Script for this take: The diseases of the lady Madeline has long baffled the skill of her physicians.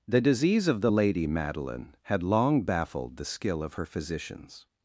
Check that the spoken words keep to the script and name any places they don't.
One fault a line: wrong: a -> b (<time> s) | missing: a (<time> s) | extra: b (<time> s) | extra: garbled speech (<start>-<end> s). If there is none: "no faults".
wrong: diseases -> disease (0.2 s)
wrong: has -> had (2.0 s)